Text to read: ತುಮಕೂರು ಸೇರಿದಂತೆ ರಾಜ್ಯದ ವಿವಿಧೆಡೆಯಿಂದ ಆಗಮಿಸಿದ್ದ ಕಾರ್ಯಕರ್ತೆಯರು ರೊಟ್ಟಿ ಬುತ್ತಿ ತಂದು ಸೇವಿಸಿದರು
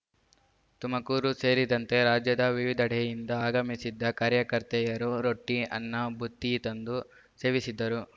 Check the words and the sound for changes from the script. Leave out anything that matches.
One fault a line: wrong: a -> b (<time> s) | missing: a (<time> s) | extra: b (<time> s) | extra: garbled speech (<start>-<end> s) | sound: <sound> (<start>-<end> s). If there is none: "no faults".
extra: ಅನ್ನ (5.8 s)